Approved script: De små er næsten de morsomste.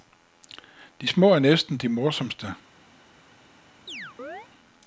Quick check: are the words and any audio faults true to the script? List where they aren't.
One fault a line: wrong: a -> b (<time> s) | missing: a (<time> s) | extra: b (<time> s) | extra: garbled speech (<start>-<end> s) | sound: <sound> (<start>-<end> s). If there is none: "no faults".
sound: chirp (3.9-4.5 s)